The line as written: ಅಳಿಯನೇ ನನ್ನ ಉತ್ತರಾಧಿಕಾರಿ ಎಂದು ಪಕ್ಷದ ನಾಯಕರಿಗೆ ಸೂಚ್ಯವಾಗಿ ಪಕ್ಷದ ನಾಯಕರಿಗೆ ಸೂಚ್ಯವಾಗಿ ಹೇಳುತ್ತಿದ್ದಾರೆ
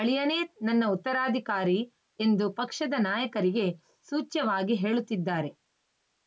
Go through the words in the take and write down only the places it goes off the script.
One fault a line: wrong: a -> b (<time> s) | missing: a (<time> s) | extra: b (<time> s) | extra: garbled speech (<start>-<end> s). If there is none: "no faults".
missing: ಪಕ್ಷದ ನಾಯಕರಿಗೆ ಸೂಚ್ಯವಾಗಿ (4.8 s)